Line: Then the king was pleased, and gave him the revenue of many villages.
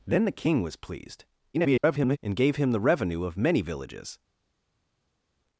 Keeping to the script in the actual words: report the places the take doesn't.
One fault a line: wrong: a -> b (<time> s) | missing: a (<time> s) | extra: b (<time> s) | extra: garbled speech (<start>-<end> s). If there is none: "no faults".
extra: garbled speech (1.5-2.2 s)